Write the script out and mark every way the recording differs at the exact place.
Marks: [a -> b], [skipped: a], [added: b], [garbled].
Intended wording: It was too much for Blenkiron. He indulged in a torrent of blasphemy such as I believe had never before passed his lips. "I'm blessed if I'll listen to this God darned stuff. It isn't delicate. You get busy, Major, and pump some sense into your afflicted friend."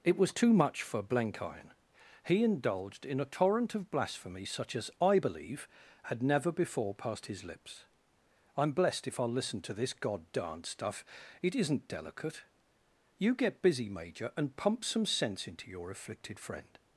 It was too much for Blenkiron. He indulged in a torrent of blasphemy such as I believe had never before passed his lips. "I'm blessed if I'll listen to this God darned stuff. It isn't delicate. You get busy, Major, and pump some sense into your afflicted friend."